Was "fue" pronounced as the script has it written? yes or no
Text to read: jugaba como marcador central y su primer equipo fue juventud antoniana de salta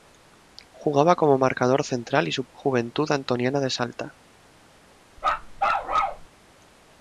no